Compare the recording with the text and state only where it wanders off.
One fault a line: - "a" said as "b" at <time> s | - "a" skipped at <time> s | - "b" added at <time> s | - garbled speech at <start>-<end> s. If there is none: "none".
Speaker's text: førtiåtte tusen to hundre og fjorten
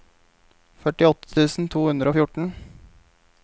none